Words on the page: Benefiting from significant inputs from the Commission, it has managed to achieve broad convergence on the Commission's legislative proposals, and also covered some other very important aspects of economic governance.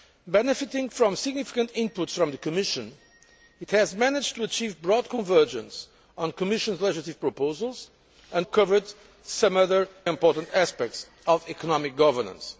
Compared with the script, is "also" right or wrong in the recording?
wrong